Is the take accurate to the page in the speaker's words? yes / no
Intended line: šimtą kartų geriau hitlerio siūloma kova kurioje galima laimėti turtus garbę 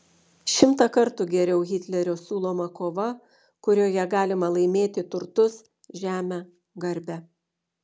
no